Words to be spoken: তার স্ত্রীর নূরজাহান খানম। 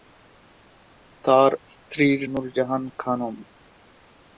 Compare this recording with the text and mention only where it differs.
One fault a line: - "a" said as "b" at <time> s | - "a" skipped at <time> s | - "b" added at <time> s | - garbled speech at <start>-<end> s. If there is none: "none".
none